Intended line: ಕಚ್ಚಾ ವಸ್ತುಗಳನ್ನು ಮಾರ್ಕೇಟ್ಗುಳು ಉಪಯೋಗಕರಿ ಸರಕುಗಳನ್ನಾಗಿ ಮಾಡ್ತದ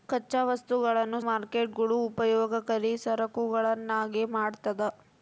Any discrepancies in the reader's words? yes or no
no